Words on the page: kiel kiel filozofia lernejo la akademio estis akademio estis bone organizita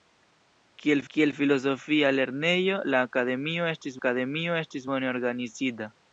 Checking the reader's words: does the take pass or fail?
pass